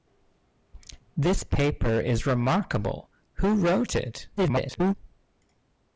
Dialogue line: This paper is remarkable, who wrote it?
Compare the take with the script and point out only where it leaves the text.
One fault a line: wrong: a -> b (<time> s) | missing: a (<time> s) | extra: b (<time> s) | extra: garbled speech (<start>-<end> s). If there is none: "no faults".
extra: garbled speech (4.4-4.9 s)